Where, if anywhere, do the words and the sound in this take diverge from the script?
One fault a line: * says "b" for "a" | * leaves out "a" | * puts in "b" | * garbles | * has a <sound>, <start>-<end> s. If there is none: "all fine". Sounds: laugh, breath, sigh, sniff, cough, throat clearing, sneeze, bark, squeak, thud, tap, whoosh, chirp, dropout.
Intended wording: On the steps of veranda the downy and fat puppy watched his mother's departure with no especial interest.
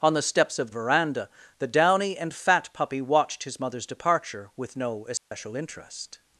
* has a dropout, 5.2-5.3 s